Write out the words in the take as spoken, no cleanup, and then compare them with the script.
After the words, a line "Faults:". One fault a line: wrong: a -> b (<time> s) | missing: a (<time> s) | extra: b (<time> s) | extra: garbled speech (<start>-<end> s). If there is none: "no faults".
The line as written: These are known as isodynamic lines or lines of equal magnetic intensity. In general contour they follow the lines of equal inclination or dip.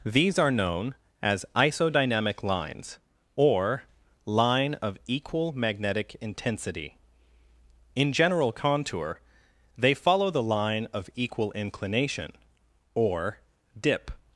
These are known as isodynamic lines or line of equal magnetic intensity. In general contour they follow the line of equal inclination or dip.
Faults:
wrong: lines -> line (4.2 s)
wrong: lines -> line (10.4 s)